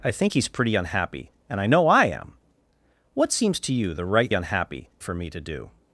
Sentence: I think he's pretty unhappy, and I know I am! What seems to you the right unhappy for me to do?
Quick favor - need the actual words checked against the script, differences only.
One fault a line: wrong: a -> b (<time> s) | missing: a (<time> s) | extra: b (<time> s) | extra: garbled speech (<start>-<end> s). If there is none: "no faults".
no faults